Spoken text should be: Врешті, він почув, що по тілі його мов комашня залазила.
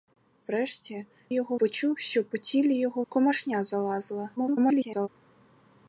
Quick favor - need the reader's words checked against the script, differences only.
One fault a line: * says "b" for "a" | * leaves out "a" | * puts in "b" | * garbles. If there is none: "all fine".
* says "його" for "він"
* leaves out "мов"
* garbles